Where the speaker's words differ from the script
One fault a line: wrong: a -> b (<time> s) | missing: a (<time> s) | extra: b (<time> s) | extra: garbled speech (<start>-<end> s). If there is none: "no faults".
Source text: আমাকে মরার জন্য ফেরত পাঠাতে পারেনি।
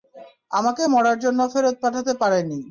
no faults